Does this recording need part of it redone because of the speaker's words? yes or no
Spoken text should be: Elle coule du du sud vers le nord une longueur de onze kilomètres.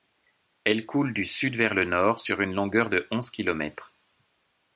yes